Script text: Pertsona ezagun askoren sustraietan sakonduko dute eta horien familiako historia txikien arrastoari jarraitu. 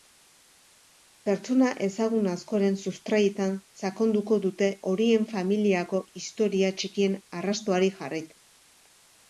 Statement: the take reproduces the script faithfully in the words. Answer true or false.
false